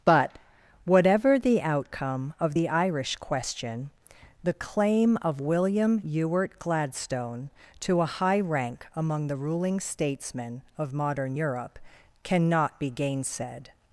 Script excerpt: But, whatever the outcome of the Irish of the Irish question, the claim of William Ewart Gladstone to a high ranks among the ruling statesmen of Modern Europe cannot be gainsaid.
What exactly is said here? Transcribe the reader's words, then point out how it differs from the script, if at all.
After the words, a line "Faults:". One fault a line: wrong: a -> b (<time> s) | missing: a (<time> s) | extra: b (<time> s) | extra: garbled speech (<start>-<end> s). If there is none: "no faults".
But, whatever the outcome of the Irish question, the claim of William Ewart Gladstone to a high rank among the ruling statesmen of Modern Europe cannot be gainsaid.
Faults:
missing: of the Irish (3.2 s)
wrong: ranks -> rank (8.4 s)